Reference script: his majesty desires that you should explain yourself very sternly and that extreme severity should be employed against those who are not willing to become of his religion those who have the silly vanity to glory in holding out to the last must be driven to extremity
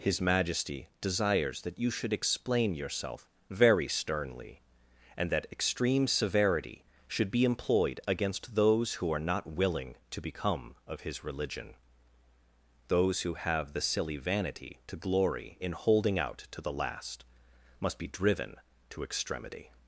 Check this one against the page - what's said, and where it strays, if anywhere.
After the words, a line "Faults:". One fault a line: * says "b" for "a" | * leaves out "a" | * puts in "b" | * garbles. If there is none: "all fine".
his majesty desires that you should explain yourself very sternly and that extreme severity should be employed against those who are not willing to become of his religion those who have the silly vanity to glory in holding out to the last must be driven to extremity
Faults:
all fine